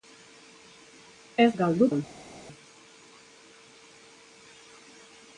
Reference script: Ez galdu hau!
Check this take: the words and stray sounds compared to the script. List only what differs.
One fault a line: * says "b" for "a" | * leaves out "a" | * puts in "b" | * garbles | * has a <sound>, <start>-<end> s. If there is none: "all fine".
all fine